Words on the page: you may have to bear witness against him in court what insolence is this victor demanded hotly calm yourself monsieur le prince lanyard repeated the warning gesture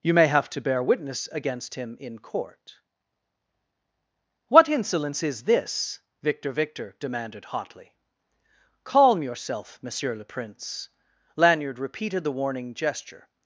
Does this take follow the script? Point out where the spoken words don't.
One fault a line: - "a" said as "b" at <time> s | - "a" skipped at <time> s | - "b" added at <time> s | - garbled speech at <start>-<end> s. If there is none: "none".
- "victor" added at 6.5 s